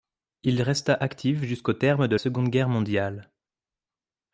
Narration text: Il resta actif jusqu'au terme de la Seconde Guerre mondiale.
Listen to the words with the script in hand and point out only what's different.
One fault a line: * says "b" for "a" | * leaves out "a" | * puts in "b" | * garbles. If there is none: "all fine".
* leaves out "la"